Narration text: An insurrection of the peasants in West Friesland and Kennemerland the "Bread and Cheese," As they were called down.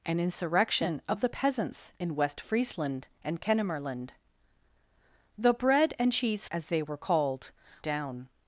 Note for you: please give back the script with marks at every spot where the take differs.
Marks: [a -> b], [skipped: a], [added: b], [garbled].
An insurrection of the peasants in West Friesland and Kennemerland the "Bread and Cheese," As they were called down.